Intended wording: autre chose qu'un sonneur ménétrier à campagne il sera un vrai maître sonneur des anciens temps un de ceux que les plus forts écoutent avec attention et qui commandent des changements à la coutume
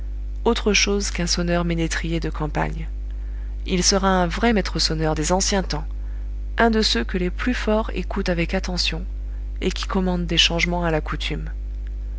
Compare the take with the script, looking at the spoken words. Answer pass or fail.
fail